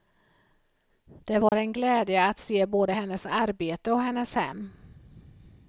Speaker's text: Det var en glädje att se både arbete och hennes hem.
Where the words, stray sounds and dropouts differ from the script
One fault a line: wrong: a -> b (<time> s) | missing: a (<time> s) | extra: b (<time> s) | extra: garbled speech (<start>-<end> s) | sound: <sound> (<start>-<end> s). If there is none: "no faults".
sound: dropout (1.5-1.5 s)
extra: hennes (2.9 s)